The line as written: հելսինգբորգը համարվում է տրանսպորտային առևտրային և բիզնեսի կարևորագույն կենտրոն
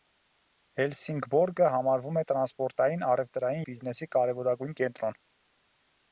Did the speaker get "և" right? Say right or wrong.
wrong